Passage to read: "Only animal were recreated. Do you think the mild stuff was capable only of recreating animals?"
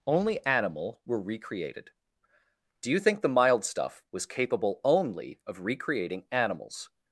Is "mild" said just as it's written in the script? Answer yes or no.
yes